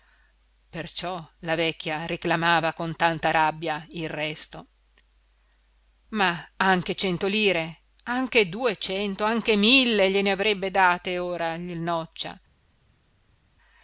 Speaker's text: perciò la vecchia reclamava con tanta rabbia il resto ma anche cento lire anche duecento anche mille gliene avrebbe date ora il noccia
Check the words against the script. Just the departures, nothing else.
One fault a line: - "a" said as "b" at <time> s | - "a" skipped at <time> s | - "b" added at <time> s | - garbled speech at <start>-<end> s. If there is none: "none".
none